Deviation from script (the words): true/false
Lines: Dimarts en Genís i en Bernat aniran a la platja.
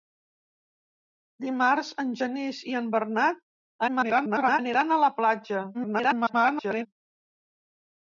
true